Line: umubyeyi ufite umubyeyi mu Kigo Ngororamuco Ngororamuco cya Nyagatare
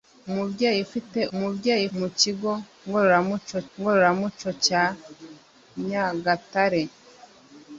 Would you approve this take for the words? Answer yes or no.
yes